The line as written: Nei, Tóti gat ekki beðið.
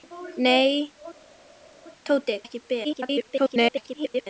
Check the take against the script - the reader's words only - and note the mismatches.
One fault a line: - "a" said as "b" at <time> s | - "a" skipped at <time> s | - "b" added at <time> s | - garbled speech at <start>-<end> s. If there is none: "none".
- "gat" skipped at 2.3 s
- garbled speech at 2.8-4.3 s